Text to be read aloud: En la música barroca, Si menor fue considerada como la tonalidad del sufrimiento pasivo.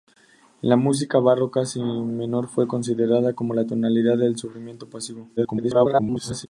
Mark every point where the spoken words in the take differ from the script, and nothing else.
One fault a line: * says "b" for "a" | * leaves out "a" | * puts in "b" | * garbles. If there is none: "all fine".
* garbles